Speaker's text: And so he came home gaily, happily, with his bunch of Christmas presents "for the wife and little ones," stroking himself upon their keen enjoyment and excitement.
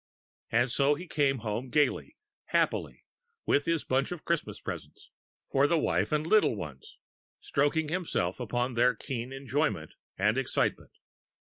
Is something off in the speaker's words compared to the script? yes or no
no